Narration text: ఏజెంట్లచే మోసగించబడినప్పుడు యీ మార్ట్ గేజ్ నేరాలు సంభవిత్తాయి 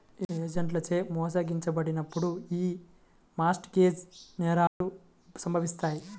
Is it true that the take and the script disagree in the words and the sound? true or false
true